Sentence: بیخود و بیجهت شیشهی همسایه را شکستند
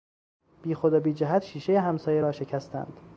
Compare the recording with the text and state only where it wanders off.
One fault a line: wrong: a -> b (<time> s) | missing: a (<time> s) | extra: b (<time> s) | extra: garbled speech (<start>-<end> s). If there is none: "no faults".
no faults